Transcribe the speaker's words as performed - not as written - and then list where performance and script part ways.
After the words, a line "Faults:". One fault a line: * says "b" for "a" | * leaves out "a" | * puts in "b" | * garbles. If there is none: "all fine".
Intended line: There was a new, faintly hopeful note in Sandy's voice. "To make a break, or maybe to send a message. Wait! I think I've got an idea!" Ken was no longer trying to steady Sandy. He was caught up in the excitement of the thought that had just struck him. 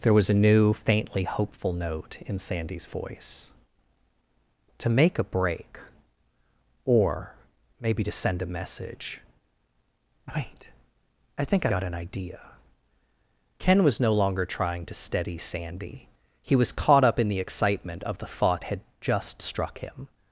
There was a new, faintly hopeful note in Sandy's voice. "To make a break, or maybe to send a message. Wait! I think Got an idea!" Ken was no longer trying to steady Sandy. He was caught up in the excitement of the thought had just struck him.
Faults:
* leaves out "I've"
* leaves out "that"